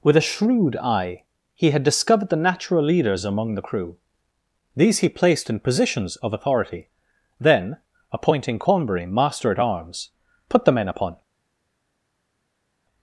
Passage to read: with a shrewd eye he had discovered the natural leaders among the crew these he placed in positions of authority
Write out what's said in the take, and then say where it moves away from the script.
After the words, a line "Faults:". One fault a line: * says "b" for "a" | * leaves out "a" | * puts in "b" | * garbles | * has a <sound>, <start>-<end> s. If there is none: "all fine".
with a shrewd eye he had discovered the natural leaders among the crew these he placed in positions of authority then appointing cornbury master at arms put the men upon
Faults:
* puts in "then appointing cornbury master at arms put the men upon"